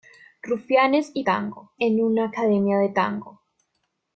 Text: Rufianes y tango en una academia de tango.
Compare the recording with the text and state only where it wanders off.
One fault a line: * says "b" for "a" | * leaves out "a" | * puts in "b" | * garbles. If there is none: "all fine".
all fine